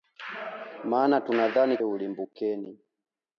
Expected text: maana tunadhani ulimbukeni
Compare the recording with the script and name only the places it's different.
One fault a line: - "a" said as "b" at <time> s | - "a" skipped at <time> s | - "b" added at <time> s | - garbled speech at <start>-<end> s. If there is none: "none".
none